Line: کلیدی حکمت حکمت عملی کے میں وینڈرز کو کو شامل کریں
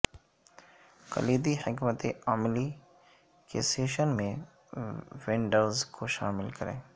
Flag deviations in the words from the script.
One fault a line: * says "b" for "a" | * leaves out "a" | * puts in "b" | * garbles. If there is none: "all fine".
* leaves out "حکمت"
* puts in "سیشن"
* leaves out "کو"